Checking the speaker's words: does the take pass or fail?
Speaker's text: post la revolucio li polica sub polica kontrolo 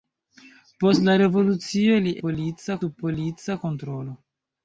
pass